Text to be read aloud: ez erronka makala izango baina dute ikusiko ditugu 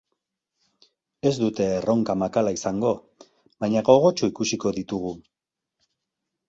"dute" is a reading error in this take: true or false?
true